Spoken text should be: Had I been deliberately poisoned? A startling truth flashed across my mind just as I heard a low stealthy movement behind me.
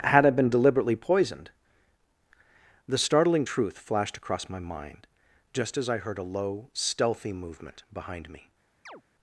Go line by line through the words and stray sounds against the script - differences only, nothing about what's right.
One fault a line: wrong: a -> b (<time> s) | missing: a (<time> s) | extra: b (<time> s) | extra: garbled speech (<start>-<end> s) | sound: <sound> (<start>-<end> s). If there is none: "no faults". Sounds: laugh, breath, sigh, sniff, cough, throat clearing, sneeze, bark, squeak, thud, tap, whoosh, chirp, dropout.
wrong: A -> The (2.9 s)
sound: chirp (8.9-9.0 s)